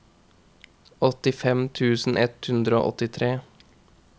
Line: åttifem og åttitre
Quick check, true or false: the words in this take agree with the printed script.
false